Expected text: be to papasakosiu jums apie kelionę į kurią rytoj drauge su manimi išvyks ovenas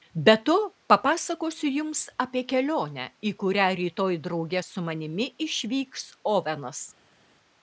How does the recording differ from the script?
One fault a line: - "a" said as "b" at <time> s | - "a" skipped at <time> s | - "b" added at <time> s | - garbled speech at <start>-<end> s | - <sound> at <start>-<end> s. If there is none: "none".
none